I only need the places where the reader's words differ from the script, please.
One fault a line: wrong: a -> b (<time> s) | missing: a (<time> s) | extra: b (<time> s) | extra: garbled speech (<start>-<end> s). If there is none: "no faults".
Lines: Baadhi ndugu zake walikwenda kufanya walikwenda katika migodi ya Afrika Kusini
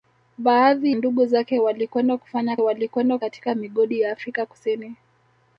no faults